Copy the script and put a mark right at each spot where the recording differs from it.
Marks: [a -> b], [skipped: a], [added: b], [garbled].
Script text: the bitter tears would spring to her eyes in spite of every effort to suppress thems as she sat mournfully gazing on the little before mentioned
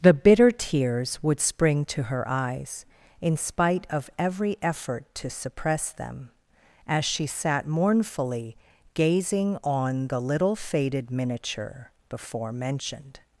the bitter tears would spring to her eyes in spite of every effort to suppress [thems -> them] as she sat mournfully gazing on the little [added: faded miniature] before mentioned